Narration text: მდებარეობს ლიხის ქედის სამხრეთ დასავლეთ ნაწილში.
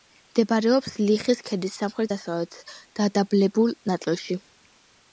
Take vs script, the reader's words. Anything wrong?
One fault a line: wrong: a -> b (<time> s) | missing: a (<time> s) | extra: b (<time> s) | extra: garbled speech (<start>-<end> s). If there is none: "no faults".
extra: დადაბლებულ (3.0 s)